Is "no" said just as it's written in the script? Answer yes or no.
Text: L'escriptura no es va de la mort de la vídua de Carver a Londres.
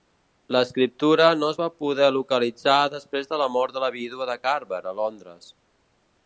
yes